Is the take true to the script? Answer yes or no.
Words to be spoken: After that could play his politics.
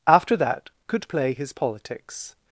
yes